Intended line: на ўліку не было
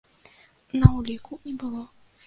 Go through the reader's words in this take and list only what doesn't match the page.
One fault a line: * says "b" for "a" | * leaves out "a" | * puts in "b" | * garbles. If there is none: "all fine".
all fine